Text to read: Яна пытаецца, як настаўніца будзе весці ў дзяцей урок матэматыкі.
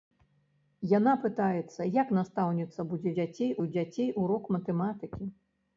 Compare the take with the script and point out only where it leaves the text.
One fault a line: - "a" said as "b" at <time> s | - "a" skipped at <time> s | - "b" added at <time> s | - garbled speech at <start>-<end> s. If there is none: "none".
- "весці" said as "дзяцей" at 3.2 s